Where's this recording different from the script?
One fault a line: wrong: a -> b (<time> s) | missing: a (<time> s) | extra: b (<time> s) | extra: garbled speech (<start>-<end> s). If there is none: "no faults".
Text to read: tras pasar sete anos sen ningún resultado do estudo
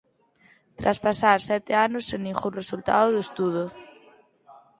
no faults